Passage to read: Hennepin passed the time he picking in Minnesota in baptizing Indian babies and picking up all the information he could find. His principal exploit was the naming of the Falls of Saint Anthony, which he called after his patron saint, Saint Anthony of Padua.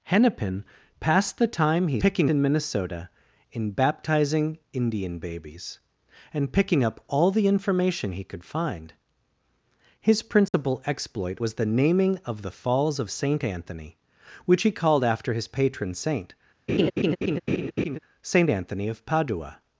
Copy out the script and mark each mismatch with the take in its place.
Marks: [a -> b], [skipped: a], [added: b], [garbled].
Hennepin passed the time he picking in Minnesota in baptizing Indian babies and picking up all the information he could find. His principal exploit was the naming of the Falls of Saint Anthony, which he called after his patron saint, Saint Anthony of Padua.